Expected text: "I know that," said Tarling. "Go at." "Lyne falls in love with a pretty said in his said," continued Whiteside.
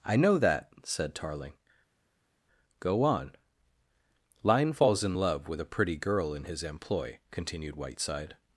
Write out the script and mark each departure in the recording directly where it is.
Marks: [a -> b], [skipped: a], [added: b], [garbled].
"I know that," said Tarling. "Go [at." -> on] "Lyne falls in love with a pretty [said -> girl] in his [said," -> employ] continued Whiteside.